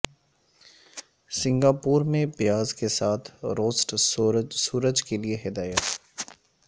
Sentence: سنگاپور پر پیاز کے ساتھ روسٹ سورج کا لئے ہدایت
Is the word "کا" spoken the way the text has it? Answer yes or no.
no